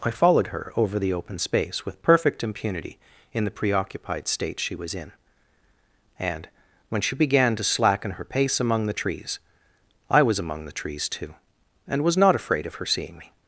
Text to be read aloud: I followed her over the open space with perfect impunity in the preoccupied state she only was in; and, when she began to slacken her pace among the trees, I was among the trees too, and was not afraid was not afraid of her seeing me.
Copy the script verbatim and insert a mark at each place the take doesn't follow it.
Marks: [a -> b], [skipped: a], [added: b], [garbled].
I followed her over the open space with perfect impunity in the preoccupied state she [skipped: only] was in; and, when she began to slacken her pace among the trees, I was among the trees too, and was not afraid [skipped: was not afraid] of her seeing me.